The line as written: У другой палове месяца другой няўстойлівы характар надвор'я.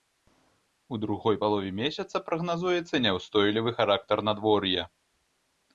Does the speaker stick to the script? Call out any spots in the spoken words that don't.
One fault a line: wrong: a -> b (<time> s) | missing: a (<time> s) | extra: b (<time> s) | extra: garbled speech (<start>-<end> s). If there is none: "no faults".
wrong: другой -> прагназуецца (2.3 s)